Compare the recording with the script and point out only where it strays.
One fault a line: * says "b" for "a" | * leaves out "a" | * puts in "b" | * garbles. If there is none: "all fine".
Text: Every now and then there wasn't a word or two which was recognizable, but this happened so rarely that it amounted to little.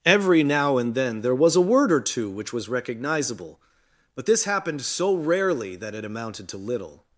* says "was" for "wasn't"